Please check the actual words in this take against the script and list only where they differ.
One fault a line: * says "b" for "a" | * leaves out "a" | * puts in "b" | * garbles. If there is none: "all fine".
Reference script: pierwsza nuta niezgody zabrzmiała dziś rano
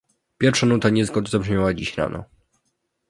all fine